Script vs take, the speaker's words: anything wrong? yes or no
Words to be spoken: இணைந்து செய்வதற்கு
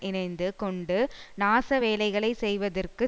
yes